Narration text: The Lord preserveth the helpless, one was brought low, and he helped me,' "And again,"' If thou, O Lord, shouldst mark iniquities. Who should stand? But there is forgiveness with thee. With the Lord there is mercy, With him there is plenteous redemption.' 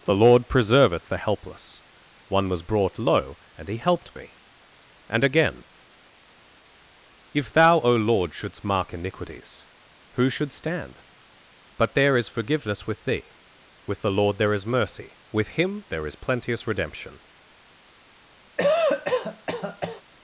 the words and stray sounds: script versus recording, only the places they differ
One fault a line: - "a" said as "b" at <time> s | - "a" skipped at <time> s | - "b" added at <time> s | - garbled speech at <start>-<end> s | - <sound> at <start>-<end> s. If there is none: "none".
- cough at 18.6-20.0 s